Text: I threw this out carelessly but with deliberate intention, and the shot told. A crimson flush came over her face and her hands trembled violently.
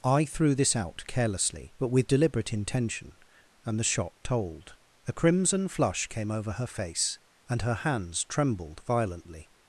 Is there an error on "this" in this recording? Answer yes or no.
no